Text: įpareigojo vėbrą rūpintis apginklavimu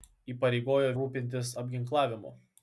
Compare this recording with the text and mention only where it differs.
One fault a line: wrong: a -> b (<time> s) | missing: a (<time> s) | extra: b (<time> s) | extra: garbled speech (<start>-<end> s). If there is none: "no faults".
missing: vėbrą (0.9 s)